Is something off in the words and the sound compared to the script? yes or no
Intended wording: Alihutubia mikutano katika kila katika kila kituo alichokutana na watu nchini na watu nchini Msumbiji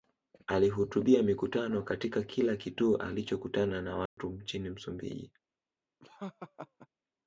yes